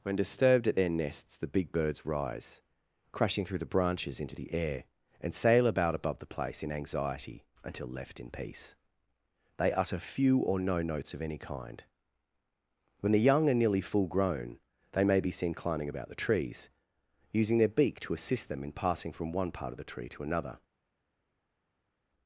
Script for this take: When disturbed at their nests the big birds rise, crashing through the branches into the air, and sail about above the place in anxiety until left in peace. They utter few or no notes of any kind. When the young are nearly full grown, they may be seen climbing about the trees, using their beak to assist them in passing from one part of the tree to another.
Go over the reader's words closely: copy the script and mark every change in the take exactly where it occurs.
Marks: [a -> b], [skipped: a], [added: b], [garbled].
When disturbed at their nests the big birds rise, crashing through the branches into the air, and sail about above the place in anxiety until left in peace. They utter few or no notes of any kind. When the young are nearly full grown, they may be seen climbing about the trees, using their beak to assist them in passing from one part of the tree to another.